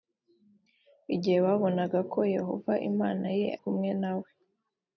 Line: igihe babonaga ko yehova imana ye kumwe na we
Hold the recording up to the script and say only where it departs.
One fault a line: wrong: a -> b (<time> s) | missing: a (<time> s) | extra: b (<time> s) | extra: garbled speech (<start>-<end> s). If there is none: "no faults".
no faults